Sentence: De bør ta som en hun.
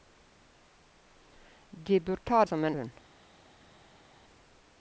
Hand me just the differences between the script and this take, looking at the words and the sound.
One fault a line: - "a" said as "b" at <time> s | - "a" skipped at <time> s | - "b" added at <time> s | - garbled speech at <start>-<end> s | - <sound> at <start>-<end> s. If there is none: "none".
none